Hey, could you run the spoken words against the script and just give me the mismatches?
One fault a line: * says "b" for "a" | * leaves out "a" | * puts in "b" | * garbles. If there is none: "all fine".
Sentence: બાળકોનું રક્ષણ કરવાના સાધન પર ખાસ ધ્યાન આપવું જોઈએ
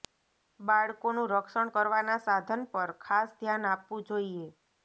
all fine